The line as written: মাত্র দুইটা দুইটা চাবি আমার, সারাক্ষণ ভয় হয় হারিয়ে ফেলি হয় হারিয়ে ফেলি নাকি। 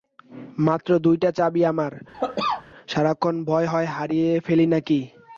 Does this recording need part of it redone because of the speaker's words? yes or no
yes